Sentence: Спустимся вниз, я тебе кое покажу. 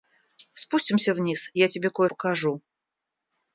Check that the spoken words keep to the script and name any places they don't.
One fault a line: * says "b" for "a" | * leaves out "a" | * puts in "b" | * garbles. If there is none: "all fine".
all fine